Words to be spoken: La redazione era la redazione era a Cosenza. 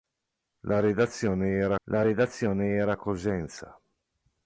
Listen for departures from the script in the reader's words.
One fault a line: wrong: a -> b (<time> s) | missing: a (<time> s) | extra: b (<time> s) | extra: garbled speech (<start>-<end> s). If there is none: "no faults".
no faults